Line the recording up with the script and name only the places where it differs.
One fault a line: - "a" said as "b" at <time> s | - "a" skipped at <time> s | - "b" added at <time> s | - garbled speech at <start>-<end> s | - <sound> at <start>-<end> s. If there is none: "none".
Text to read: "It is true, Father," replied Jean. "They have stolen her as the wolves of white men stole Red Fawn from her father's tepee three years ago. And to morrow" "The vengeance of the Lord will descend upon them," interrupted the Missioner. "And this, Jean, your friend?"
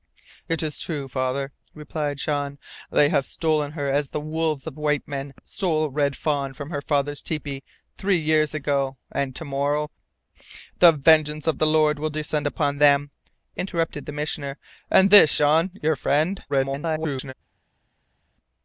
- garbled speech at 16.5-17.3 s